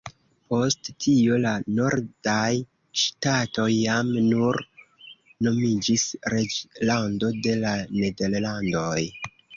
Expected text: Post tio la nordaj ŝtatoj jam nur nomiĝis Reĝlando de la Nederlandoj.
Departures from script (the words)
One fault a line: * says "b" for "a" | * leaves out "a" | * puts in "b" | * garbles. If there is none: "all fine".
all fine